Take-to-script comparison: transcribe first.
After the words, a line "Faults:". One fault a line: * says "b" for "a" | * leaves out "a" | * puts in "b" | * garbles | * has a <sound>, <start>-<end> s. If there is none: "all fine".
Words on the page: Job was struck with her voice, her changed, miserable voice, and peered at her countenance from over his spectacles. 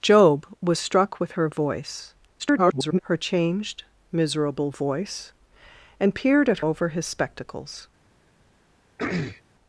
Job was struck with her voice, [garbled] her changed, miserable voice, and peered at over his spectacles.
Faults:
* garbles
* leaves out "her countenance from"
* has a throat clearing, 9.0-9.4 s